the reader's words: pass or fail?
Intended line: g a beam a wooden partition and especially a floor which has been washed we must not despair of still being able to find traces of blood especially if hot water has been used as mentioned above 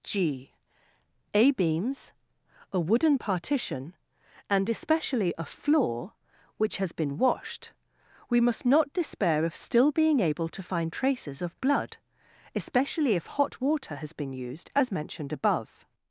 fail